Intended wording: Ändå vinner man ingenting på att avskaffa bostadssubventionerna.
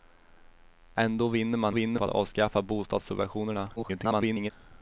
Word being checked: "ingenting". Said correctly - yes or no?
no